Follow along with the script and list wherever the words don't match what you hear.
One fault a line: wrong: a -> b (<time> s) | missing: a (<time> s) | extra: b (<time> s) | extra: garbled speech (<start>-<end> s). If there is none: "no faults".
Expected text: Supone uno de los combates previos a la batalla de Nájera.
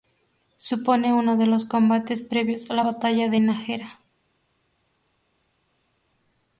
no faults